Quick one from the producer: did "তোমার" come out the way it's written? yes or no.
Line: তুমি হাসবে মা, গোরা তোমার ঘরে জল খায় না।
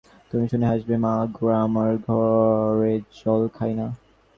no